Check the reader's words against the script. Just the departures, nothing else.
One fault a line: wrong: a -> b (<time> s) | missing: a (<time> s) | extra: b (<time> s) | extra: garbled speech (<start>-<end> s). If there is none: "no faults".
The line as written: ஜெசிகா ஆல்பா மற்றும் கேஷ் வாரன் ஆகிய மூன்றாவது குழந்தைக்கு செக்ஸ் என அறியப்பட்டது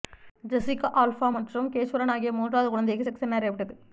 no faults